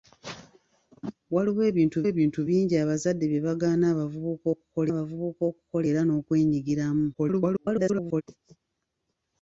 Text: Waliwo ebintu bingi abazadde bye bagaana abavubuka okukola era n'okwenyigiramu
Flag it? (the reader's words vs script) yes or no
yes